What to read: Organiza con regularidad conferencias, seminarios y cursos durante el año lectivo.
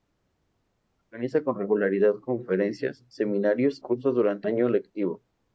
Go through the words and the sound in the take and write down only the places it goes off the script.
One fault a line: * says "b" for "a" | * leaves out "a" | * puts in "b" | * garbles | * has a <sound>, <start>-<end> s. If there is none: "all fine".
* leaves out "y"
* leaves out "el"